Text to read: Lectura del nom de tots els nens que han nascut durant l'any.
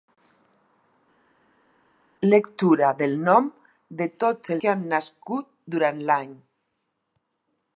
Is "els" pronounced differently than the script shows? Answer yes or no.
yes